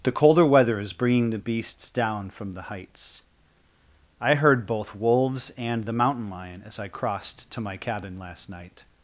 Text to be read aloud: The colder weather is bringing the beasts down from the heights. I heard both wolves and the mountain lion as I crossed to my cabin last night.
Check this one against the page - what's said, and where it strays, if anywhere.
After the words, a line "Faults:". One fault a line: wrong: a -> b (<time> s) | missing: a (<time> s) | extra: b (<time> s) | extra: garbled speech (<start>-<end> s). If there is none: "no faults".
The colder weather is bringing the beasts down from the heights. I heard both wolves and the mountain lion as I crossed to my cabin last night.
Faults:
no faults